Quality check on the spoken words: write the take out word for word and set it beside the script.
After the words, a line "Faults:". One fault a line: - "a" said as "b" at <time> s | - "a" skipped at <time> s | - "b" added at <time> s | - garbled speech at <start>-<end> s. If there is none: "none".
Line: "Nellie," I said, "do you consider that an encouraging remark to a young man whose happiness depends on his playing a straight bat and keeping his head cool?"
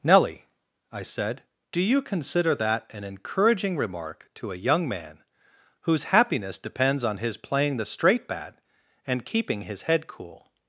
"Nellie," I said, "do you consider that an encouraging remark to a young man whose happiness depends on his playing the straight bat and keeping his head cool?"
Faults:
- "a" said as "the" at 7.8 s